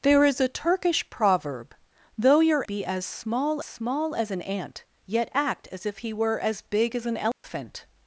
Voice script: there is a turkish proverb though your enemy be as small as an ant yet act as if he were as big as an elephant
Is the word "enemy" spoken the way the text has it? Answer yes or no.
no